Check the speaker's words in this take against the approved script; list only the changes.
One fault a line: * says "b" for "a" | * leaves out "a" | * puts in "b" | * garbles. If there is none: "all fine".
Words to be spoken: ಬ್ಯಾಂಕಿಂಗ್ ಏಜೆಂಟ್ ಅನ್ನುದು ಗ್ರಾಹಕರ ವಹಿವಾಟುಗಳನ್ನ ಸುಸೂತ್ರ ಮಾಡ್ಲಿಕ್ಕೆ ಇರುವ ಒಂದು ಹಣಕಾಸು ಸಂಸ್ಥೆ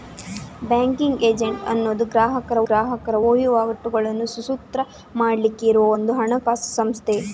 * puts in "ಗ್ರಾಹಕರ"